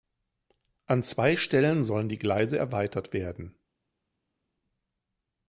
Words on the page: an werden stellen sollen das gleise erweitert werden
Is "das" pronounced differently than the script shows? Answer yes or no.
yes